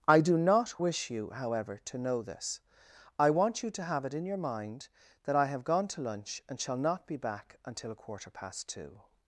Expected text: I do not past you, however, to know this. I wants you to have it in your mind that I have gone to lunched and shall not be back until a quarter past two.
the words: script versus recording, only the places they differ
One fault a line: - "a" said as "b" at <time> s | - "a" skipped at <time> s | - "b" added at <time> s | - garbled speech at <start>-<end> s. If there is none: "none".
- "past" said as "wish" at 0.8 s
- "wants" said as "want" at 3.3 s
- "lunched" said as "lunch" at 6.0 s